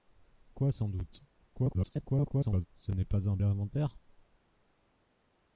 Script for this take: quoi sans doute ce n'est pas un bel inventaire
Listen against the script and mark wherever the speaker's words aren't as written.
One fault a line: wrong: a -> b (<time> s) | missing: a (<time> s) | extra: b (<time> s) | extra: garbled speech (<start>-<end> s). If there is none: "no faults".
extra: garbled speech (1.5-2.7 s)
missing: bel (3.4 s)